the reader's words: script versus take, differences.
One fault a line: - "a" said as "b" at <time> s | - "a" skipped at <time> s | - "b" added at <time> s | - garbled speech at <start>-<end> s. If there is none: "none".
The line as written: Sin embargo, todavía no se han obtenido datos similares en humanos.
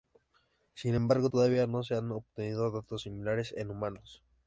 none